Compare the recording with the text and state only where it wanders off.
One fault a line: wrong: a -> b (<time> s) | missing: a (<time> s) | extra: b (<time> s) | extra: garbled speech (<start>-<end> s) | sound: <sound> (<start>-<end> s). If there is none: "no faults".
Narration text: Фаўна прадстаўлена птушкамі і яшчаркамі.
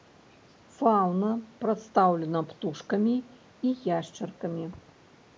no faults